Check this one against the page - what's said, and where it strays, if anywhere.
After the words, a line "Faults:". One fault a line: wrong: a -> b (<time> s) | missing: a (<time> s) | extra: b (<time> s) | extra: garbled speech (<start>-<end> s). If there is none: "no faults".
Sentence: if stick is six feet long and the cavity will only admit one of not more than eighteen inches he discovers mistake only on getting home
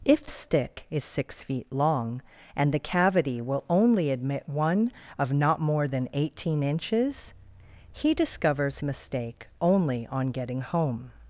if stick is six feet long and the cavity will only admit one of not more than eighteen inches he discovers mistake only on getting home
Faults:
no faults